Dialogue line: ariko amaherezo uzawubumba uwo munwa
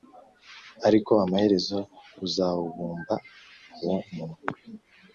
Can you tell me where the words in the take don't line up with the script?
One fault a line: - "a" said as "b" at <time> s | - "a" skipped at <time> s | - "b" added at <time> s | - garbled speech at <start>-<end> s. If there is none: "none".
none